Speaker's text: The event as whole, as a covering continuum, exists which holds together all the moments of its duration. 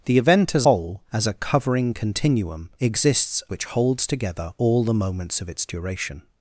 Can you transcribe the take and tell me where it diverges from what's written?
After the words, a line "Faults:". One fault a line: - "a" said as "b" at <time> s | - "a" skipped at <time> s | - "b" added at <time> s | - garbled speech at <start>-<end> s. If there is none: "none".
The event as whole, as a covering continuum, exists which holds together all the moments of its duration.
Faults:
none